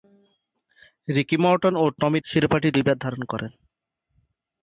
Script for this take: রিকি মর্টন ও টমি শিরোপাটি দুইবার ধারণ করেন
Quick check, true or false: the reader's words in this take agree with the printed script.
true